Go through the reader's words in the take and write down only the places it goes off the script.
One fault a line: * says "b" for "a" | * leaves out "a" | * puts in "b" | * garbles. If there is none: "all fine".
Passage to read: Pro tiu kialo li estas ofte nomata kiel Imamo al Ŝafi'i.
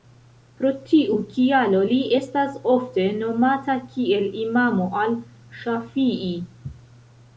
all fine